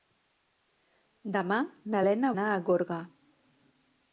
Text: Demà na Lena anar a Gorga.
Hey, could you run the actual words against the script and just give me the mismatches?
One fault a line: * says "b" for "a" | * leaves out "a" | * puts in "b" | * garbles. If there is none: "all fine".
all fine